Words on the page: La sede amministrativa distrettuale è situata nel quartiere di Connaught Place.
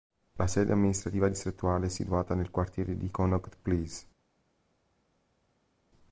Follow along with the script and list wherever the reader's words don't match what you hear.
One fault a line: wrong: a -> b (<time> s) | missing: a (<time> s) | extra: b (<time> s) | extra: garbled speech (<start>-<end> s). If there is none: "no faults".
no faults